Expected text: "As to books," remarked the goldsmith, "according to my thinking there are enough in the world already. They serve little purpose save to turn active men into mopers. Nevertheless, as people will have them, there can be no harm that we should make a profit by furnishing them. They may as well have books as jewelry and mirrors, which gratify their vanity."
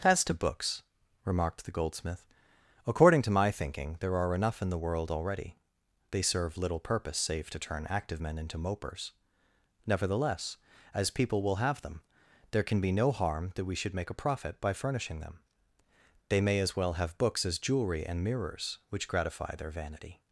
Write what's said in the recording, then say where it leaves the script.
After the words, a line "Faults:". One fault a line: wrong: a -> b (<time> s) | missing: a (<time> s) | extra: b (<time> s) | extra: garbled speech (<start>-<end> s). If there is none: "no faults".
"As to books," remarked the goldsmith, "according to my thinking there are enough in the world already. They serve little purpose save to turn active men into mopers. Nevertheless, as people will have them, there can be no harm that we should make a profit by furnishing them. They may as well have books as jewelry and mirrors, which gratify their vanity."
Faults:
no faults